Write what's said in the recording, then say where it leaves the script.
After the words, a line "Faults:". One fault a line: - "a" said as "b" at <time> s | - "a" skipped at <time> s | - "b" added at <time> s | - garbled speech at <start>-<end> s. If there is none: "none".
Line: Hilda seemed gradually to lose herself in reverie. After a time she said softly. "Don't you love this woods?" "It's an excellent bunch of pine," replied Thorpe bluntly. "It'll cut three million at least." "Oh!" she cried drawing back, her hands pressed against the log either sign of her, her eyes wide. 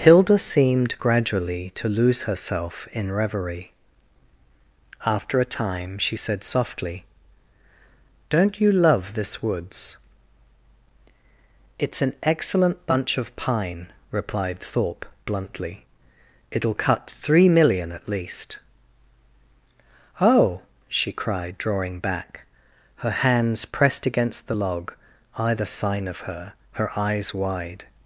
Hilda seemed gradually to lose herself in reverie. After a time she said softly. "Don't you love this woods?" "It's an excellent bunch of pine," replied Thorpe bluntly. "It'll cut three million at least." "Oh!" she cried drawing back, her hands pressed against the log either sign of her, her eyes wide.
Faults:
none